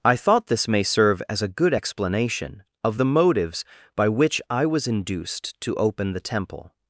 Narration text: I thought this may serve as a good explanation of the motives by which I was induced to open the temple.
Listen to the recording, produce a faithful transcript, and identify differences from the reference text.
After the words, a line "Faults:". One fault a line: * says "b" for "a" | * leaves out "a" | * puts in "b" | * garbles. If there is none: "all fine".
I thought this may serve as a good explanation of the motives by which I was induced to open the temple.
Faults:
all fine